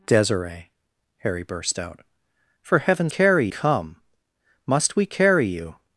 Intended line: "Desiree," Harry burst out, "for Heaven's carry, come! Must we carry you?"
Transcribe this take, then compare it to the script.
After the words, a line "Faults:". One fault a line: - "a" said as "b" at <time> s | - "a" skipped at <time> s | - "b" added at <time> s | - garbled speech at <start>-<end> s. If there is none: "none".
"Desiree," Harry burst out, "for Heaven's carry, come! Must we carry you?"
Faults:
none